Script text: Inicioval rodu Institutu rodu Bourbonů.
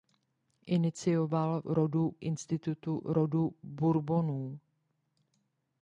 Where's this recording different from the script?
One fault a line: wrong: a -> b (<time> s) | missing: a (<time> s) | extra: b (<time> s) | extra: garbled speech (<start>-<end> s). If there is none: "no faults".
no faults